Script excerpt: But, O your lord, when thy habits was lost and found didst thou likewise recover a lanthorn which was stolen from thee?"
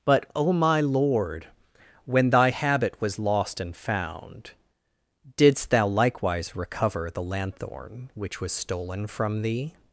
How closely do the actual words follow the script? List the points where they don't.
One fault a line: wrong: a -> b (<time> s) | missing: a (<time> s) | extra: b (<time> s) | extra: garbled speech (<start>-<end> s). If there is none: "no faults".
wrong: your -> my (0.5 s)
wrong: habits -> habit (2.5 s)
wrong: a -> the (7.1 s)